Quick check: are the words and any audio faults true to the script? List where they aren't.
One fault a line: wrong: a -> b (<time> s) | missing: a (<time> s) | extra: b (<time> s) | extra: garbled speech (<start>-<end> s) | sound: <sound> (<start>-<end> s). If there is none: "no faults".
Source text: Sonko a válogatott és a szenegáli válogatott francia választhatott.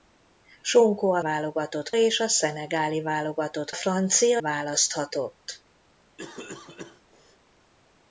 sound: cough (6.2-7.4 s)